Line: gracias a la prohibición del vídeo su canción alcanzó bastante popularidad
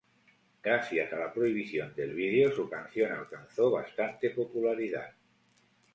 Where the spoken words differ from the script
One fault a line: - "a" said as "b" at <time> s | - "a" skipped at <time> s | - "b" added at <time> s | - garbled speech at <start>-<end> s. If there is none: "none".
none